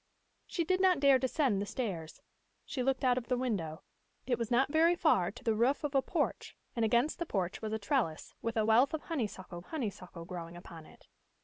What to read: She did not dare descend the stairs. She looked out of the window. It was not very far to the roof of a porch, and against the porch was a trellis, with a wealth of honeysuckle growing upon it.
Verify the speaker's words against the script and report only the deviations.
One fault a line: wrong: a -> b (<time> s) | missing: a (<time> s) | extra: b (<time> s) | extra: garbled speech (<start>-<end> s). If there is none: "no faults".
extra: honeysuckle (9.6 s)